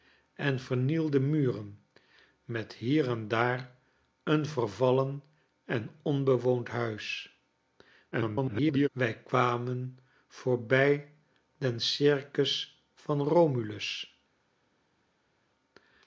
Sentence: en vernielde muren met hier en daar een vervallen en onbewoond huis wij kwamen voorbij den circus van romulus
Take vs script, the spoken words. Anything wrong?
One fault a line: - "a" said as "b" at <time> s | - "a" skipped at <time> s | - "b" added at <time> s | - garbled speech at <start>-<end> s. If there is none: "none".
- garbled speech at 8.1-8.9 s